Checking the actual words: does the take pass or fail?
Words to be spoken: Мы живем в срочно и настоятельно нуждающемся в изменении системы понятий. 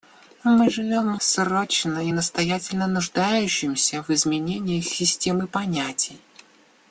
pass